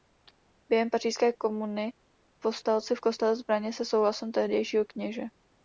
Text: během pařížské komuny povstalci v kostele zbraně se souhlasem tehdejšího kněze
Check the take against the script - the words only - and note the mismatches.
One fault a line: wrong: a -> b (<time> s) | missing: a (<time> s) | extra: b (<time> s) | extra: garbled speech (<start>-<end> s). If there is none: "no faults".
no faults